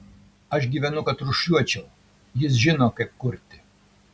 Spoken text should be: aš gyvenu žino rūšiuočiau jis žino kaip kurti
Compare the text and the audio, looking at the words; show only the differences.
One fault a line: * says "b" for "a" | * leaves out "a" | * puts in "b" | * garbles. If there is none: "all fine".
* says "kad" for "žino"